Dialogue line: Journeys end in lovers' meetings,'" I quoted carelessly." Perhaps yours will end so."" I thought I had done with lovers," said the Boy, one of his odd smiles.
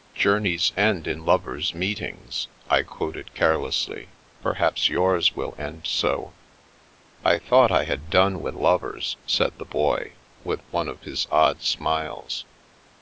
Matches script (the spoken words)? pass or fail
fail